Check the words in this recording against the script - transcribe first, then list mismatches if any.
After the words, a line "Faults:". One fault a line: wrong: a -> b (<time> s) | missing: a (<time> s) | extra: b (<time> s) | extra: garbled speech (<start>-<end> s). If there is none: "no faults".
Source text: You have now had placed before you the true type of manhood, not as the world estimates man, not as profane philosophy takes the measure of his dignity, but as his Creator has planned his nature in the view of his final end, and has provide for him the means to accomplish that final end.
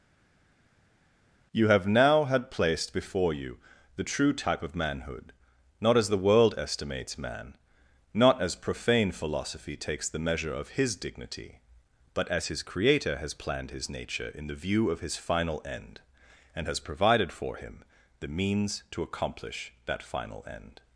You have now had placed before you the true type of manhood, not as the world estimates man, not as profane philosophy takes the measure of his dignity, but as his Creator has planned his nature in the view of his final end, and has provided for him the means to accomplish that final end.
Faults:
wrong: provide -> provided (16.8 s)